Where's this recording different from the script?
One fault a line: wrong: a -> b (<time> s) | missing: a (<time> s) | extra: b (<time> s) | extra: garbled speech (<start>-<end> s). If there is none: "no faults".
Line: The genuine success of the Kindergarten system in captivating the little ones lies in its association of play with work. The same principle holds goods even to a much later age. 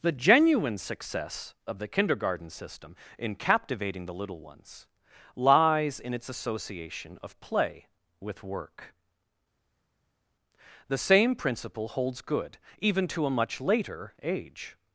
wrong: goods -> good (12.2 s)